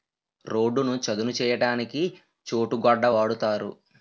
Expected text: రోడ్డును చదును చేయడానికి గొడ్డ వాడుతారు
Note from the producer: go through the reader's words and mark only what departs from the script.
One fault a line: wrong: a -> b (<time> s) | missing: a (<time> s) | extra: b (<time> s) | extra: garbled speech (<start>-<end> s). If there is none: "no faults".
extra: చోటు (2.5 s)